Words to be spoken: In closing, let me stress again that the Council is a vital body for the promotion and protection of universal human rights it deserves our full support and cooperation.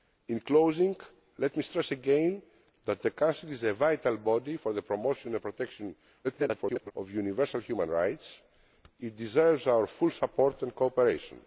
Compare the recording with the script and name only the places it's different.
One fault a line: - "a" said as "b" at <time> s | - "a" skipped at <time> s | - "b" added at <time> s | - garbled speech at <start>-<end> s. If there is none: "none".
- garbled speech at 6.2-6.9 s